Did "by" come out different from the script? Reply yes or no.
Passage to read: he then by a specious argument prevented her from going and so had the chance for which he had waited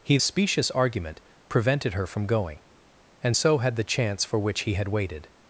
yes